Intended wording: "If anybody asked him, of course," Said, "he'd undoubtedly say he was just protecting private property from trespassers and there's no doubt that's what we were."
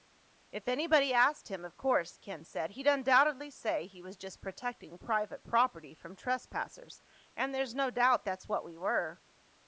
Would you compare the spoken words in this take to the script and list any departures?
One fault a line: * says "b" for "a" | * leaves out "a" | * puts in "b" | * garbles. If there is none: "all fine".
* puts in "Ken"